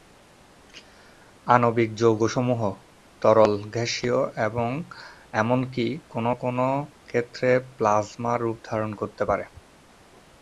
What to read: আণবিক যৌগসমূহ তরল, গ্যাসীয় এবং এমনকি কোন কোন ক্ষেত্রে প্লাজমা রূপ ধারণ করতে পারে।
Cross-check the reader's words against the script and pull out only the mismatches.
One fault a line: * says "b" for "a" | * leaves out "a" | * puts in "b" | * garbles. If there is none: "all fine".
all fine